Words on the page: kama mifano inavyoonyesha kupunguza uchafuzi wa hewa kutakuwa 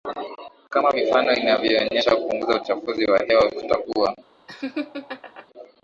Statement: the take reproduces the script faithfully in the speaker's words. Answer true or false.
true